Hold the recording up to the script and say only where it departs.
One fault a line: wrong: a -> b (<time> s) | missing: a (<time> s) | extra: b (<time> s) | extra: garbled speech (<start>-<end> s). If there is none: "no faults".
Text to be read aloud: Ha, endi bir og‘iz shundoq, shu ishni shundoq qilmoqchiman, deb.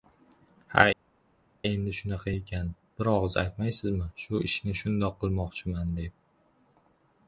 extra: shunaqa ekan (2.0 s)
wrong: shundoq -> aytmaysizmi (3.4 s)